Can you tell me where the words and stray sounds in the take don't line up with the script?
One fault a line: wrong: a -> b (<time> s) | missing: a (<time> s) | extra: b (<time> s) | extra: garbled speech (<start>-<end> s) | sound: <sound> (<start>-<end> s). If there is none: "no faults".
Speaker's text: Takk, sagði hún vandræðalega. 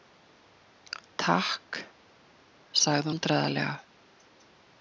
missing: hún (3.1 s)